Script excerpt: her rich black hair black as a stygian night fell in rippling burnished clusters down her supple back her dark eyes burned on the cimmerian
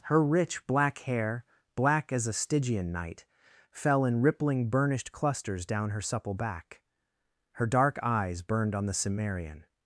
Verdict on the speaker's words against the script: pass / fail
pass